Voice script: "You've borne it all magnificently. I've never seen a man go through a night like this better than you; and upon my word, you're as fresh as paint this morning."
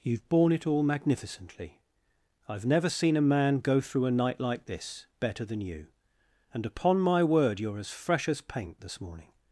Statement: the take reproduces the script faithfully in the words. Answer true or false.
true